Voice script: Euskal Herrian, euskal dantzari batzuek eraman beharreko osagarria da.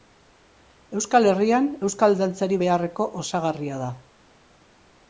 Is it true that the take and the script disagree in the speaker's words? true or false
true